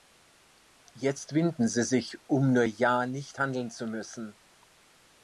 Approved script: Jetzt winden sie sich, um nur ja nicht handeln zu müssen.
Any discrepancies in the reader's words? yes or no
no